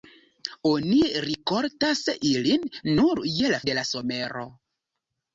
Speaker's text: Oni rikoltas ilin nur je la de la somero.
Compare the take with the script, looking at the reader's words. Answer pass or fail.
pass